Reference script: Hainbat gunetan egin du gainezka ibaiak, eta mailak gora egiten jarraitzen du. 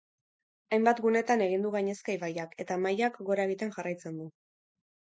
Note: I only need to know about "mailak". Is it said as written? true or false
true